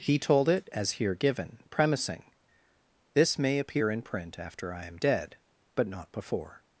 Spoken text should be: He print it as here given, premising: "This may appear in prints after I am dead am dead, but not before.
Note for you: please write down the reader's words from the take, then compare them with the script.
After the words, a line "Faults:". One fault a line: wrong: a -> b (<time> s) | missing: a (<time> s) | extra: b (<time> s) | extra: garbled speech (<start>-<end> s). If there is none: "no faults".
He told it as here given, premising: "This may appear in print after I am dead, but not before.
Faults:
wrong: print -> told (0.2 s)
wrong: prints -> print (4.0 s)
missing: am dead (5.4 s)